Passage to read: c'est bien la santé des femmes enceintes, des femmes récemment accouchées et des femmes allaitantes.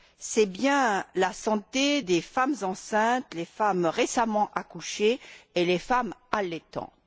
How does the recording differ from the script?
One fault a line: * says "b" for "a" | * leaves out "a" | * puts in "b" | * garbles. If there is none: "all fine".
all fine